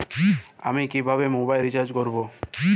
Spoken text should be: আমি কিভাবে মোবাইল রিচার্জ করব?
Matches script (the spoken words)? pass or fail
pass